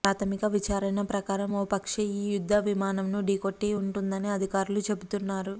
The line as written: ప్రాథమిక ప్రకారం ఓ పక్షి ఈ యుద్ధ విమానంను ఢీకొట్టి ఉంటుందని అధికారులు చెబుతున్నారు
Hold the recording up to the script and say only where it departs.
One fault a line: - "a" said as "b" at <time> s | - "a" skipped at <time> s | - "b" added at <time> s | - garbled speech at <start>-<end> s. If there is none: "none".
- "విచారణ" added at 0.5 s